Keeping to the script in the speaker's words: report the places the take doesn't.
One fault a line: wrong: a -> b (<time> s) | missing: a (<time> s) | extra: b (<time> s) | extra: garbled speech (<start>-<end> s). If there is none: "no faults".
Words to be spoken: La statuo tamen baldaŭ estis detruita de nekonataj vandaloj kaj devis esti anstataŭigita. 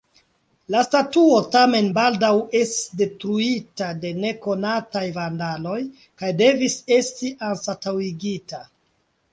no faults